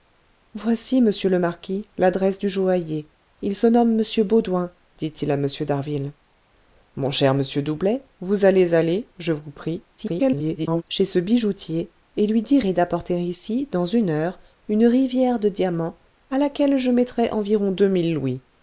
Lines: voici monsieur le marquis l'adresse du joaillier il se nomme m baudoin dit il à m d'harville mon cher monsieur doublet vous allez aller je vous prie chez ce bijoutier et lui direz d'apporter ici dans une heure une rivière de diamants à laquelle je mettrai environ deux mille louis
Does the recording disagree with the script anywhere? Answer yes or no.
yes